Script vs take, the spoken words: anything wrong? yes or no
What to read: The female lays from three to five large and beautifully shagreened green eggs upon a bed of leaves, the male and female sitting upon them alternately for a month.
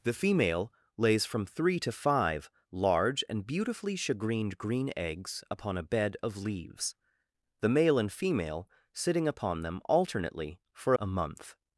no